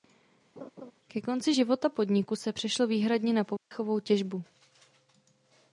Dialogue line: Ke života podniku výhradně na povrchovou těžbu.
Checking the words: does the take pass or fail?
fail